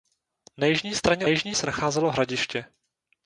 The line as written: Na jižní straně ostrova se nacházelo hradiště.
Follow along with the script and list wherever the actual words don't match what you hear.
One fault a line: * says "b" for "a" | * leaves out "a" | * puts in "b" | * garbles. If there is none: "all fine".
* says "jižní" for "ostrova"